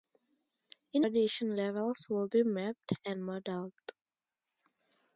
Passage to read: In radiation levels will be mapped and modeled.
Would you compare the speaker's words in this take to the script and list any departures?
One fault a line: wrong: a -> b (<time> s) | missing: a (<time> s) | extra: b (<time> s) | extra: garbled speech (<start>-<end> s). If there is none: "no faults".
no faults